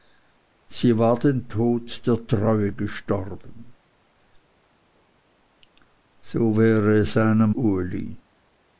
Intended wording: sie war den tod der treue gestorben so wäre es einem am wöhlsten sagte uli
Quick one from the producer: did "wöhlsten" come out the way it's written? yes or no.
no